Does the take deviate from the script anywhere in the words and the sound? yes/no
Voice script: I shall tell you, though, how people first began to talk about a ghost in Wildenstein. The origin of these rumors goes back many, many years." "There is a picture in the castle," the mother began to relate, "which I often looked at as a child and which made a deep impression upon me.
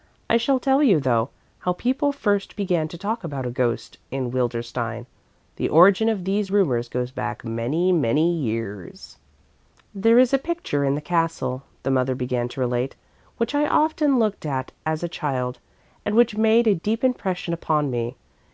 no